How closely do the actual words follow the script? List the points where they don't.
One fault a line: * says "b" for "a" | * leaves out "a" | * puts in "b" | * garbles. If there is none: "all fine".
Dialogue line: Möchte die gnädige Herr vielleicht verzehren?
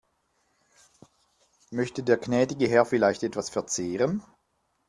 * says "der" for "die"
* puts in "etwas"